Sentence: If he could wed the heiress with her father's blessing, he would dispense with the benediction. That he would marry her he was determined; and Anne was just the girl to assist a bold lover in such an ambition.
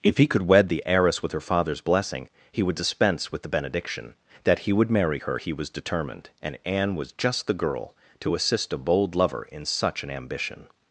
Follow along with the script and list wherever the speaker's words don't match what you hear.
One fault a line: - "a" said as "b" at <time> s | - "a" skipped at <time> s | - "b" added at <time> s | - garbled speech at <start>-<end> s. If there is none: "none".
none